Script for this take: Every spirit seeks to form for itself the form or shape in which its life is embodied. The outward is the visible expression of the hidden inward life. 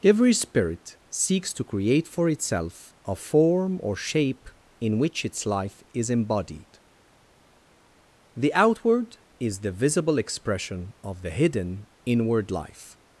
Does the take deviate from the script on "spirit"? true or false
false